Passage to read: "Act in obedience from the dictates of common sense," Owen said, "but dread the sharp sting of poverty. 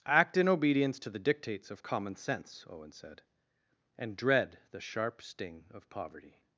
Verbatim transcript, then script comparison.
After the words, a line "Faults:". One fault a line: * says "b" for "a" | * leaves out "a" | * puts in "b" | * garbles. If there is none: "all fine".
"Act in obedience to the dictates of common sense," Owen said, "and dread the sharp sting of poverty.
Faults:
* says "to" for "from"
* says "and" for "but"